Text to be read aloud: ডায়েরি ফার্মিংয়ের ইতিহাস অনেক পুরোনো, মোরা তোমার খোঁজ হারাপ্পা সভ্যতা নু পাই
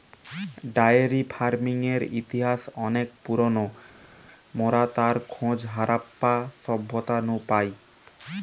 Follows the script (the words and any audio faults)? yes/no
no